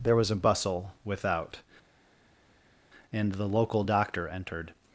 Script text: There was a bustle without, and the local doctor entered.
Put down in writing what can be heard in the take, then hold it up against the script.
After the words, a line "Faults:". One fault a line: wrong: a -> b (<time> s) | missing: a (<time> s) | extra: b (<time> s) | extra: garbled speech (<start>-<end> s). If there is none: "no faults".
There was a bustle without, and the local doctor entered.
Faults:
no faults